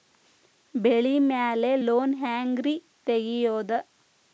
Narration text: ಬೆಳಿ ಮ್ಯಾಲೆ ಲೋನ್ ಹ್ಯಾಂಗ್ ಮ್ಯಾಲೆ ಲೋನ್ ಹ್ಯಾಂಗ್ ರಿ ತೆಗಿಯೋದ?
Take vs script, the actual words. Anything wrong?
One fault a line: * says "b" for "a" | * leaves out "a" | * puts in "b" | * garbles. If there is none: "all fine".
* leaves out "ಮ್ಯಾಲೆ ಲೋನ್ ಹ್ಯಾಂಗ್"